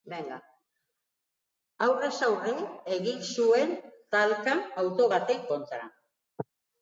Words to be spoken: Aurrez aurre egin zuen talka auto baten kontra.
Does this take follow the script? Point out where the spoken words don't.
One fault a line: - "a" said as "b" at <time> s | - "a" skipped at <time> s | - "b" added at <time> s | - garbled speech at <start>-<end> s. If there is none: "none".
none